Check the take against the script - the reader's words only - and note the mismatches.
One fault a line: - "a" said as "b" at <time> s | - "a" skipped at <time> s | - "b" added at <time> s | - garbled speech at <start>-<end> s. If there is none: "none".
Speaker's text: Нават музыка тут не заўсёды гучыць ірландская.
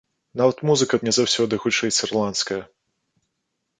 - "тут" skipped at 1.0 s